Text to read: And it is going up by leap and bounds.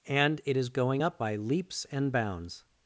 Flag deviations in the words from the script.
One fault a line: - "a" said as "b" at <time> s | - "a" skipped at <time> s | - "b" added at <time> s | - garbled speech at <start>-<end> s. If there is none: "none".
- "leap" said as "leaps" at 1.4 s